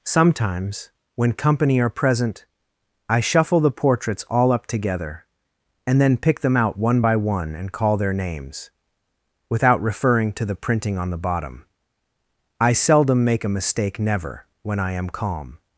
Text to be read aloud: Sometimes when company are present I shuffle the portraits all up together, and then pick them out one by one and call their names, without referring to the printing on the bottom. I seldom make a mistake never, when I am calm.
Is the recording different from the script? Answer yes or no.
no